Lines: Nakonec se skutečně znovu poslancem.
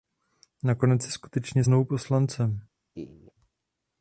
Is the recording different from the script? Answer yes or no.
no